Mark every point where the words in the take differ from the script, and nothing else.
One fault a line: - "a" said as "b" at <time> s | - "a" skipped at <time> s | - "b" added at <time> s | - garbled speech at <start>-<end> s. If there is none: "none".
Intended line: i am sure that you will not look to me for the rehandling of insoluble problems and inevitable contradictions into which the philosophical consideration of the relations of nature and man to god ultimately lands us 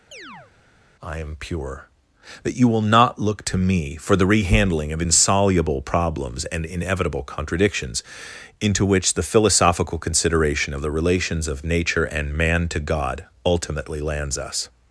- "sure" said as "pure" at 1.4 s